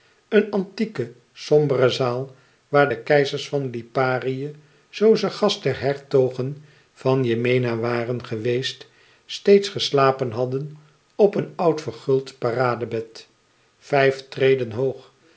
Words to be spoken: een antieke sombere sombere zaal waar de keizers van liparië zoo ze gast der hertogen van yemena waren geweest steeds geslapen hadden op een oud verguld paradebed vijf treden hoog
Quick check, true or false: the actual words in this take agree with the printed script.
false